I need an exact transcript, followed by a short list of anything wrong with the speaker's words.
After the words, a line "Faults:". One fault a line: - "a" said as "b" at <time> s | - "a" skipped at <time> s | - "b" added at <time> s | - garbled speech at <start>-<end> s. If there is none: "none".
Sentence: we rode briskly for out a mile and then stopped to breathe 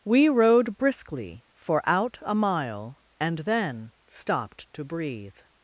we rode briskly for out a mile and then stopped to breathe
Faults:
none